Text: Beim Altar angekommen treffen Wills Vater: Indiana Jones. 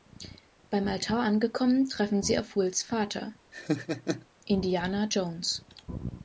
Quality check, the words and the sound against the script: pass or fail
fail